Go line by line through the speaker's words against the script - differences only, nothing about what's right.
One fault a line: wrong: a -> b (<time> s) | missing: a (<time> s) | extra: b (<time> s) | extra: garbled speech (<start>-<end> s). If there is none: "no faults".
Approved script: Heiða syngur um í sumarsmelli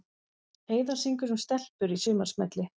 extra: stelpur (1.4 s)